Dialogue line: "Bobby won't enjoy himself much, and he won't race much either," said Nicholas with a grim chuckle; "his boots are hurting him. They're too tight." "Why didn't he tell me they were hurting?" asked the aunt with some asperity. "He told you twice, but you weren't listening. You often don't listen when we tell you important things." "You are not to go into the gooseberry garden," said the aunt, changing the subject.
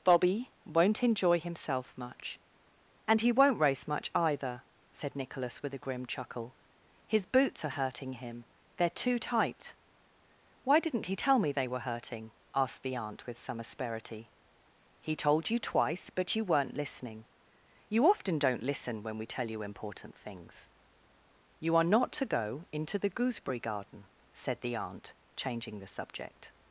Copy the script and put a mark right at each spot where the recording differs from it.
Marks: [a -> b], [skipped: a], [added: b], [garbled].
"Bobby won't enjoy himself much, and he won't race much either," said Nicholas with a grim chuckle; "his boots are hurting him. They're too tight." "Why didn't he tell me they were hurting?" asked the aunt with some asperity. "He told you twice, but you weren't listening. You often don't listen when we tell you important things." "You are not to go into the gooseberry garden," said the aunt, changing the subject.